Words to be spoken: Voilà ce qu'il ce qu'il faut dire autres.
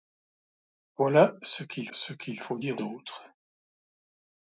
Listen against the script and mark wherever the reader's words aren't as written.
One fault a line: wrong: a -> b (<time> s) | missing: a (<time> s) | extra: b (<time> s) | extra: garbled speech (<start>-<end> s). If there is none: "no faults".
no faults